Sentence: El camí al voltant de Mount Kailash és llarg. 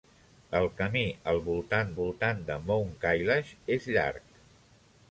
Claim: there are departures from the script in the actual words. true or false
true